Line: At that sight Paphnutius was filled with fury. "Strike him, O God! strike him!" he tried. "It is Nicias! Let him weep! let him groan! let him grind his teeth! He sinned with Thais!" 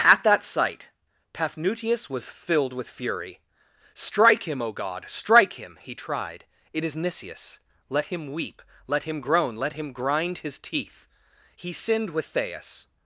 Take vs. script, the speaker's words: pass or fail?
pass